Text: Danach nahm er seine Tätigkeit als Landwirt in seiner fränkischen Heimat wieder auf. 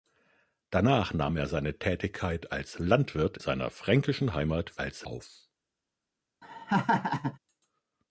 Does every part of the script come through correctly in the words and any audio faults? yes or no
no